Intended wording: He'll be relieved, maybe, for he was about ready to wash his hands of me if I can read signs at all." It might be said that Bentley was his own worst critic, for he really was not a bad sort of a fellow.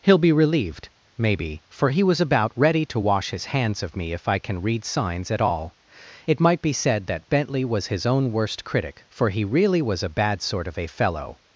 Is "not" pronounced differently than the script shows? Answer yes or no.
yes